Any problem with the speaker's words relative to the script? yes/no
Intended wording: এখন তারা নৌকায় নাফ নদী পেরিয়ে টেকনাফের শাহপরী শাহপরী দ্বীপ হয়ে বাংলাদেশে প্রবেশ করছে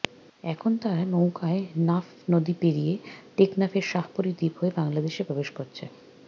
yes